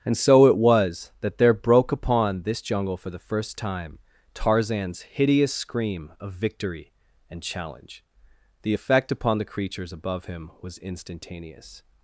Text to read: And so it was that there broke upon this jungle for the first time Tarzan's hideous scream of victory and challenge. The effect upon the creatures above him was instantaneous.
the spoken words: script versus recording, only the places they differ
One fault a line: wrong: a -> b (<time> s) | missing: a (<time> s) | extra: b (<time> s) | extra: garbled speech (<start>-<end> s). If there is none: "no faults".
no faults